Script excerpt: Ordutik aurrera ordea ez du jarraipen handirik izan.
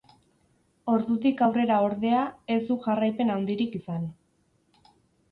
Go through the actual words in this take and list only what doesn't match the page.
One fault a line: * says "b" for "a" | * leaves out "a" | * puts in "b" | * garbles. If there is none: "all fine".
all fine